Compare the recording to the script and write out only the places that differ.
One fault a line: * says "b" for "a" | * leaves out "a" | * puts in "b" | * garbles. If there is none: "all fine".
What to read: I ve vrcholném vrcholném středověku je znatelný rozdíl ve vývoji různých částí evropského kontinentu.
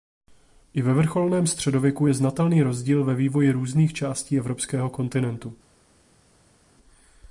* leaves out "vrcholném"